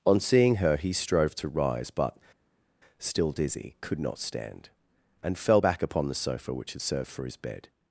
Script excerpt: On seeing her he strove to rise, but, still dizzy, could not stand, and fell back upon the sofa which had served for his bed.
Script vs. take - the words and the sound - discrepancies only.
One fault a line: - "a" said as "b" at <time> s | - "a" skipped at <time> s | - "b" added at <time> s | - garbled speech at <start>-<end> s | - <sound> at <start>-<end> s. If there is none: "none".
none